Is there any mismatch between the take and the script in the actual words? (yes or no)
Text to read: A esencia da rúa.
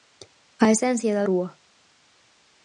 no